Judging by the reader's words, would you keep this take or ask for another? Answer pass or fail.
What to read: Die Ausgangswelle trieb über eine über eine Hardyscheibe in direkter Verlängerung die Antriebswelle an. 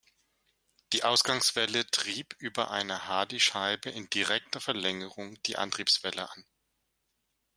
fail